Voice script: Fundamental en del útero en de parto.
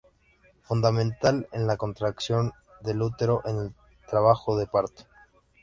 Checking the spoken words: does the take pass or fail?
fail